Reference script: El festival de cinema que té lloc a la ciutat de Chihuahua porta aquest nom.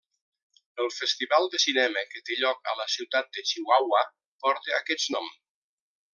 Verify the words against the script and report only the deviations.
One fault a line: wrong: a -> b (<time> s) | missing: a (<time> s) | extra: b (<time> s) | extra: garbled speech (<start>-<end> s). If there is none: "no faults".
no faults